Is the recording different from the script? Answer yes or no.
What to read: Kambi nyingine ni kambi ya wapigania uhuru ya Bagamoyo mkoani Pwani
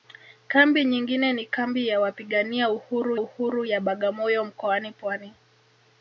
yes